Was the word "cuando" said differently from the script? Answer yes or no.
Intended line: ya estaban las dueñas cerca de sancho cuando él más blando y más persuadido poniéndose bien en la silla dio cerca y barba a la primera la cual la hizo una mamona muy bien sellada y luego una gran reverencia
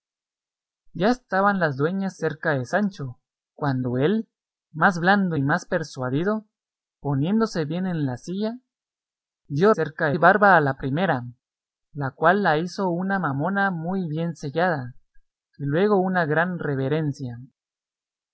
no